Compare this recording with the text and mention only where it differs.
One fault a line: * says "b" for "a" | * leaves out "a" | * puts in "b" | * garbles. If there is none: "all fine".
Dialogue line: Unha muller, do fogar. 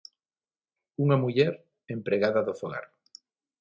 * puts in "empregada"